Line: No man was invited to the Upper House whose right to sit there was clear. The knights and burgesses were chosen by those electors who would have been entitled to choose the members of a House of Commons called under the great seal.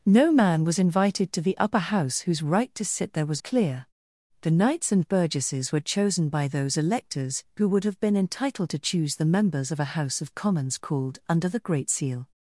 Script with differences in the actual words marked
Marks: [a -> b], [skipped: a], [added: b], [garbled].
No man was invited to the Upper House whose right to sit there was clear. The knights and burgesses were chosen by those electors who would have been entitled to choose the members of a House of Commons called under the great seal.